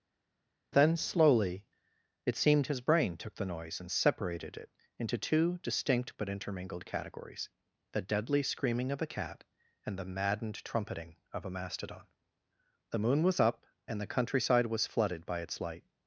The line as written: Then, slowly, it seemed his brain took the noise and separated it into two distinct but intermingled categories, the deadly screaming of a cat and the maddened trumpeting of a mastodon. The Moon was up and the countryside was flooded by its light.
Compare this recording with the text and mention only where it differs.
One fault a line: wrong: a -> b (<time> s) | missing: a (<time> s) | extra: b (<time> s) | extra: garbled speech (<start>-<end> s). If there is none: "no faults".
no faults